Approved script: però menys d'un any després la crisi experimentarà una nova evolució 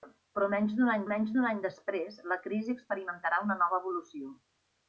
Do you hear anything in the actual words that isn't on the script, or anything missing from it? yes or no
yes